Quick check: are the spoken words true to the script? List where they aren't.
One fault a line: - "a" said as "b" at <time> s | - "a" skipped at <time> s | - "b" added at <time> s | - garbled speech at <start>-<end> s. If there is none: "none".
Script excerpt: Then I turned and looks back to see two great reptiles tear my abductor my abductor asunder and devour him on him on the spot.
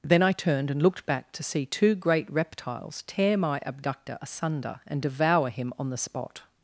- "looks" said as "looked" at 0.8 s
- "my abductor" skipped at 4.2 s
- "him on" skipped at 5.9 s